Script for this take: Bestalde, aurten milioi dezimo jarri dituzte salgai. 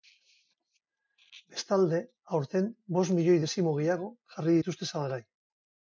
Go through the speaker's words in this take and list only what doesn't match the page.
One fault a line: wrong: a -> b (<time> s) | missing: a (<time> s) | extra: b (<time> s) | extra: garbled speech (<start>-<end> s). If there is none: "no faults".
extra: bost (3.0 s)
extra: gehiago (3.8 s)